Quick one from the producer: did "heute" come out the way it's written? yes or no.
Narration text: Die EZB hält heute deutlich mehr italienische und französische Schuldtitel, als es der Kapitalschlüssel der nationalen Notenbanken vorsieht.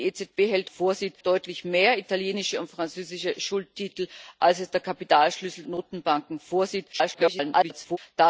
no